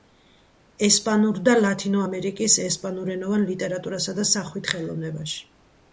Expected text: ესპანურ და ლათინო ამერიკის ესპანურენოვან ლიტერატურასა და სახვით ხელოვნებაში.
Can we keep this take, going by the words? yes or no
yes